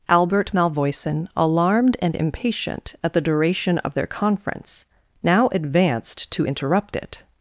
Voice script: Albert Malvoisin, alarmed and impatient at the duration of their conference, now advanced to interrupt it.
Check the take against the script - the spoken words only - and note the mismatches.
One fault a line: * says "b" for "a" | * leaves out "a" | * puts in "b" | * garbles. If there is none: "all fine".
all fine